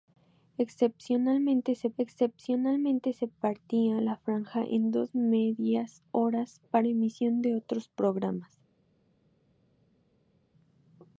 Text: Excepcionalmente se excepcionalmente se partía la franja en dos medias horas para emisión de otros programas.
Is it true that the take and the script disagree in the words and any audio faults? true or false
false